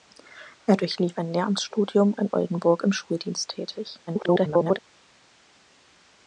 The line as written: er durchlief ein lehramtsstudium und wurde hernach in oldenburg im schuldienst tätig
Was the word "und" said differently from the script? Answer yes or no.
yes